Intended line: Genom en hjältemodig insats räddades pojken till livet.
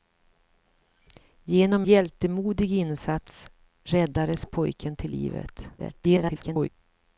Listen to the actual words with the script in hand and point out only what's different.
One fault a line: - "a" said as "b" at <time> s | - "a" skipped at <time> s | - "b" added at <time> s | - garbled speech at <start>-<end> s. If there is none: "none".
- "en" skipped at 1.9 s
- garbled speech at 5.8-6.7 s